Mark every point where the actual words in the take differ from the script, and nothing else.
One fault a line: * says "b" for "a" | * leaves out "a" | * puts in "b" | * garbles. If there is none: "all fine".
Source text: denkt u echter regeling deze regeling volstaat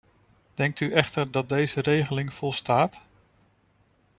* says "dat" for "regeling"